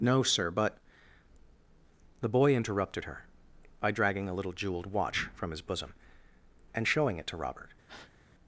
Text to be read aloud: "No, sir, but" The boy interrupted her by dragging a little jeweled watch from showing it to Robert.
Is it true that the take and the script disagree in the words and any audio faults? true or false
true